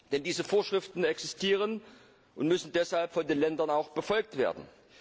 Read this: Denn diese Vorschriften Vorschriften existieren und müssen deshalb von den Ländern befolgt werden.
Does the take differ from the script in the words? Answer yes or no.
yes